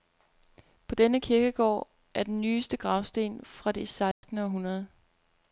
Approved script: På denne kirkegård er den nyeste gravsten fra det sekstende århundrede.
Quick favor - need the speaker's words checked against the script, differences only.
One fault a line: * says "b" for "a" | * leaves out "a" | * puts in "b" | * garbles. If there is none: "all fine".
all fine